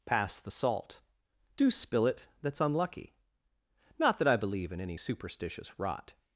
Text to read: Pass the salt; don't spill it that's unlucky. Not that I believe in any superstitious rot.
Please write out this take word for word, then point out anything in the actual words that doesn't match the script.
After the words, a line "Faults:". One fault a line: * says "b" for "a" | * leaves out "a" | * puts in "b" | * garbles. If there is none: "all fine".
Pass the salt; do spill it that's unlucky. Not that I believe in any superstitious rot.
Faults:
* says "do" for "don't"